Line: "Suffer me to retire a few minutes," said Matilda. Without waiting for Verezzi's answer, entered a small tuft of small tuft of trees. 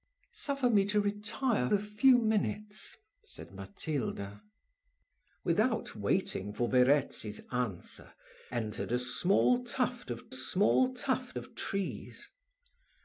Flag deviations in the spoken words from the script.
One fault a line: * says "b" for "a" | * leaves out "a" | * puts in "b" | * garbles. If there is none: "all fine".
all fine